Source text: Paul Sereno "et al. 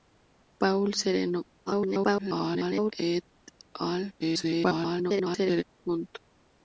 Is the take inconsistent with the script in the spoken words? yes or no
yes